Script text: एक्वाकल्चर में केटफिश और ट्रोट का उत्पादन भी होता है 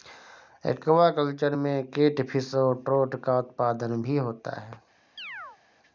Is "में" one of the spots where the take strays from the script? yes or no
no